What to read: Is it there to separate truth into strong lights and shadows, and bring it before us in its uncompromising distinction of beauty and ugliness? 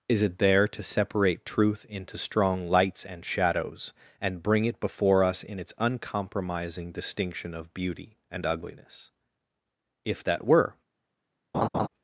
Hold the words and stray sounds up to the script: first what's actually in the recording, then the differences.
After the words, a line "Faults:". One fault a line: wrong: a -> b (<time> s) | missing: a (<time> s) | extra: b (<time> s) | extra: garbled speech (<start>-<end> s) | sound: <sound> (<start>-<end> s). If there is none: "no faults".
Is it there to separate truth into strong lights and shadows, and bring it before us in its uncompromising distinction of beauty and ugliness? If that were
Faults:
extra: If that were (10.0 s)
sound: laugh (11.5-11.9 s)